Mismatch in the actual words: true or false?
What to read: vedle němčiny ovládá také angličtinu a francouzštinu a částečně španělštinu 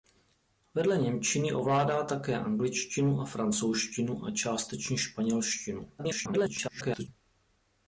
true